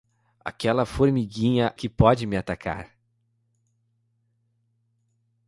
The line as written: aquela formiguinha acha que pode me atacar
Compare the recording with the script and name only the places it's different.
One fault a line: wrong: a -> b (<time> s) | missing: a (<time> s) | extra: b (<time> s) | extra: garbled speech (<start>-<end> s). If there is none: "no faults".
missing: acha (1.7 s)